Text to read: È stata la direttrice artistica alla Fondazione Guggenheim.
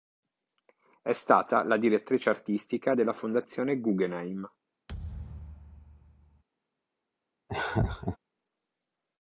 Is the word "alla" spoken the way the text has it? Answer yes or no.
no